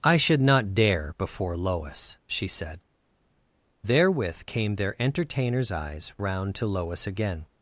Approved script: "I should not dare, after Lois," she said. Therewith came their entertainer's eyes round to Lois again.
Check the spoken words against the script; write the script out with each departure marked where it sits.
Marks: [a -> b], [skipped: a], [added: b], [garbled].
"I should not dare, [after -> before] Lois," she said. Therewith came their entertainer's eyes round to Lois again.